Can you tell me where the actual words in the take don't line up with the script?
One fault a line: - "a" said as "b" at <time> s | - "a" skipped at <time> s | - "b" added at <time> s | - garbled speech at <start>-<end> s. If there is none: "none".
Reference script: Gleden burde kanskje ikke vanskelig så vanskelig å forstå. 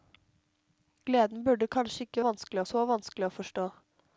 none